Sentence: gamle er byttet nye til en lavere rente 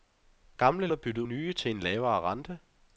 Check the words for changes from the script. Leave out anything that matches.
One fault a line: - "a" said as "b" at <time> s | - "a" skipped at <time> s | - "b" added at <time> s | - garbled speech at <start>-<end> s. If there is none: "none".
none